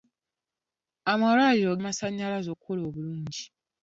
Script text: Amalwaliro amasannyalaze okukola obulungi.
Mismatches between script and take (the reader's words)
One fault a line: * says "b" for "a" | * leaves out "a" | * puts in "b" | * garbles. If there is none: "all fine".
all fine